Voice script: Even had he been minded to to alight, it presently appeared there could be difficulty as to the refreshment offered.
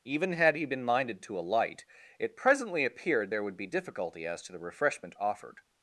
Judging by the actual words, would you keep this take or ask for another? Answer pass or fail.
fail